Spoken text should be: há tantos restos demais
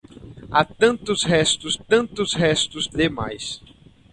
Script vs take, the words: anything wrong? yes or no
yes